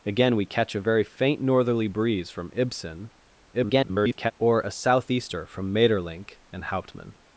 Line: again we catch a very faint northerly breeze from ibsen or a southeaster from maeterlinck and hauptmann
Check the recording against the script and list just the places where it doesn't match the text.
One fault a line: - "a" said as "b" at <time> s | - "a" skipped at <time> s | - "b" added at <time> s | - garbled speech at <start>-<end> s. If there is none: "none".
- garbled speech at 3.5-4.3 s